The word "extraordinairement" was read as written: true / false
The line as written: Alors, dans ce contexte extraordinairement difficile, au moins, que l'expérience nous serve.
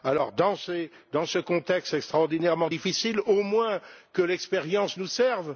true